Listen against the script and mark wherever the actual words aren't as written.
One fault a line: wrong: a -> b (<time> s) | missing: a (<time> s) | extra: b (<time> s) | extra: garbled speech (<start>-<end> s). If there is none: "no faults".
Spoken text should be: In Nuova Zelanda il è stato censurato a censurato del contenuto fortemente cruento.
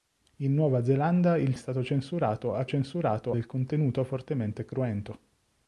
no faults